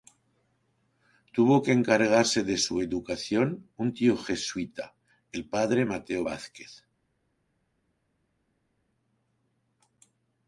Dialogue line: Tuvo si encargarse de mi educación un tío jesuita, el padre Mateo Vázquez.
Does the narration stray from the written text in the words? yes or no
yes